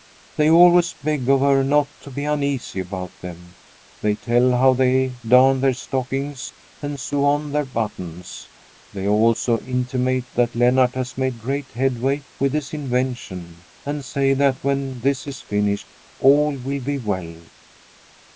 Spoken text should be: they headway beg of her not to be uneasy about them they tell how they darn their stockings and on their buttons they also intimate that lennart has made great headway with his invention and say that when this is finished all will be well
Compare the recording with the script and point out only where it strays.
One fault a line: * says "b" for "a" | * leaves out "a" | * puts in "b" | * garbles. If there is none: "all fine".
* says "always" for "headway"
* puts in "sew"